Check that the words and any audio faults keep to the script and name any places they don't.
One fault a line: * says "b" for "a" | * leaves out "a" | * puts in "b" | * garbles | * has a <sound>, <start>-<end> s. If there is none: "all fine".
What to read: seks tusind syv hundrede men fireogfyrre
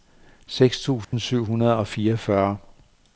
* has a dropout, 1.0-1.1 s
* says "og" for "men"